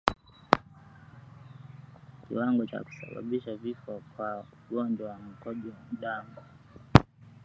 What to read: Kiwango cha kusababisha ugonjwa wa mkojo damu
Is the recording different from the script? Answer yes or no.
yes